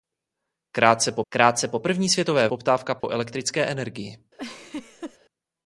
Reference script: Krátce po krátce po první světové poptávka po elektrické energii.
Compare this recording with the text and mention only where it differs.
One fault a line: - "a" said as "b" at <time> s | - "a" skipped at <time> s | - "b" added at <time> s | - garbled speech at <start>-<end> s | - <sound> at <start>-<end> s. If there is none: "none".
- dropout at 3.0-3.0 s
- laugh at 4.4-5.2 s